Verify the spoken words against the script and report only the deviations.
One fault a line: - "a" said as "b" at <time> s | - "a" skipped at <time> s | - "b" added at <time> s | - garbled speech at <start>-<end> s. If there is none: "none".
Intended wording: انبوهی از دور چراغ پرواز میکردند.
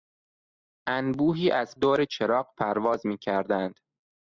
none